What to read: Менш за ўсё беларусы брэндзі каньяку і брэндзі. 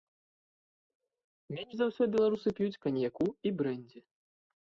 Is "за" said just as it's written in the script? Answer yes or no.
yes